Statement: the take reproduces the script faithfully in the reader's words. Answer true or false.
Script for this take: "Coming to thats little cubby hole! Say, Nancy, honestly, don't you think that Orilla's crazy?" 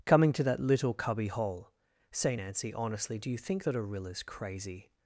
false